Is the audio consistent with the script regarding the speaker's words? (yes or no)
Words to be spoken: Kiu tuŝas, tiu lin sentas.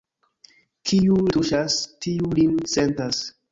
yes